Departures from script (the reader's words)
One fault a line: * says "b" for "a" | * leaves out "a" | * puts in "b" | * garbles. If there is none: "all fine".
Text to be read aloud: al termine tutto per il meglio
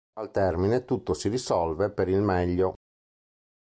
* puts in "si risolve"